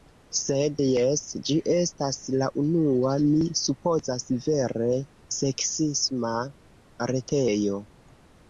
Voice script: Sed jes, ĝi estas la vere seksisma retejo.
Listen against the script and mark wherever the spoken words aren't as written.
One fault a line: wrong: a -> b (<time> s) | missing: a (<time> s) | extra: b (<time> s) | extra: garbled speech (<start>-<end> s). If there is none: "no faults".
extra: unua mi supozas (2.6 s)